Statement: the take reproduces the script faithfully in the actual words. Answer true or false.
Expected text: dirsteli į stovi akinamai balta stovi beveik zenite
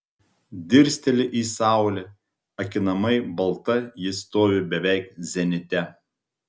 false